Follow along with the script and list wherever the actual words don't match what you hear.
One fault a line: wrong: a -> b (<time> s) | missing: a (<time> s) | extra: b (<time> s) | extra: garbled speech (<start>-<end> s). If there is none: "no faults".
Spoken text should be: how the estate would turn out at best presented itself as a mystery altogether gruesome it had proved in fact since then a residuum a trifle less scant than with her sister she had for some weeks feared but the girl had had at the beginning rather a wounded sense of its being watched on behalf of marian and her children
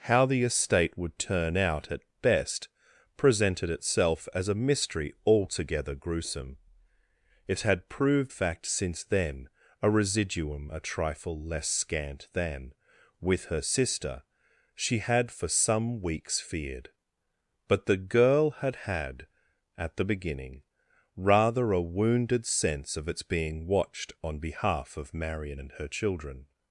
missing: in (8.3 s)